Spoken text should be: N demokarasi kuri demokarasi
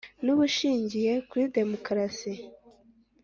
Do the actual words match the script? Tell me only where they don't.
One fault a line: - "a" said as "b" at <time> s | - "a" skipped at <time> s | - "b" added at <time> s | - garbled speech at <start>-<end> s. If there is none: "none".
- "demokarasi" said as "ubushingiye" at 0.3 s